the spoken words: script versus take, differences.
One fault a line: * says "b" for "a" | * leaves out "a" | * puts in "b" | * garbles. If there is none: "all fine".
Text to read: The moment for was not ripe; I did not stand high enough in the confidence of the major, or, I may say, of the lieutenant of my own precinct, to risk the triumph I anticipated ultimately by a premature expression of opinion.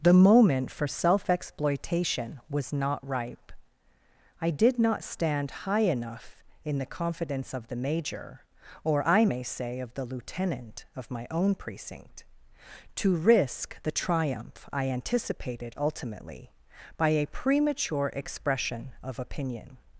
* puts in "self exploitation"